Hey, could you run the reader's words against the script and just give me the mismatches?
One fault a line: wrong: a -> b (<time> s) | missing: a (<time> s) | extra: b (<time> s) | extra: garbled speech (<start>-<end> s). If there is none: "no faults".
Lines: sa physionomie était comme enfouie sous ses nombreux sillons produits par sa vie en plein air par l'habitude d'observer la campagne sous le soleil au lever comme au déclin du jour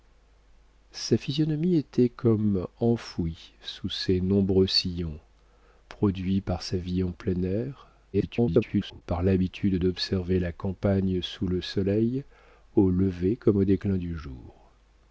extra: garbled speech (8.1-9.0 s)